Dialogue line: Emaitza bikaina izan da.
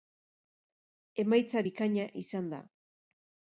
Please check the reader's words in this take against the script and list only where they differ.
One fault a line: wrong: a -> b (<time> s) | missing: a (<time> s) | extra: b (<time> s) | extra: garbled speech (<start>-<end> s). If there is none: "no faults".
no faults